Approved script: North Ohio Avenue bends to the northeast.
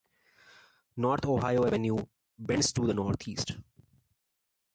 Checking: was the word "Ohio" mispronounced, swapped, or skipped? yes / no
no